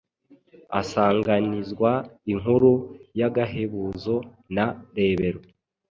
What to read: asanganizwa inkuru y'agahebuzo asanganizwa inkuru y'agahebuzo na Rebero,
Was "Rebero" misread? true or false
false